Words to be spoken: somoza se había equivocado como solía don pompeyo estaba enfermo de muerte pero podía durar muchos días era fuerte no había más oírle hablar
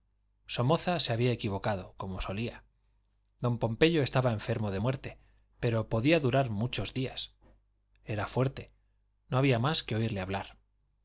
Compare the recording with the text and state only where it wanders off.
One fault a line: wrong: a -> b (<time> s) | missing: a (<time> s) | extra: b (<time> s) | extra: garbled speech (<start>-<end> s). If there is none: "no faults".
extra: que (9.8 s)